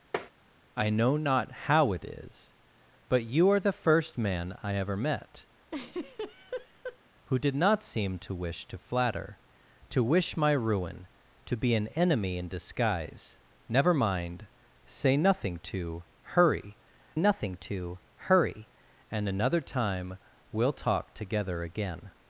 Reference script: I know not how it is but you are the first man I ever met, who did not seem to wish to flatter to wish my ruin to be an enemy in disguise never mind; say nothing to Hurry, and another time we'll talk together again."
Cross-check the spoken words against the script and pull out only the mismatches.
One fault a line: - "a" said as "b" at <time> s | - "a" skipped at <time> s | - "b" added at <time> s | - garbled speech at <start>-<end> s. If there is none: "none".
- "nothing to Hurry" added at 17.2 s